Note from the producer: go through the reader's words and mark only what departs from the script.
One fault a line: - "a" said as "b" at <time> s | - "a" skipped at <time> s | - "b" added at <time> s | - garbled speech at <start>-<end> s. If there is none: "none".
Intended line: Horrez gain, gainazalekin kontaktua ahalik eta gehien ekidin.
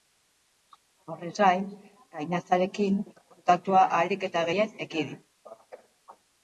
none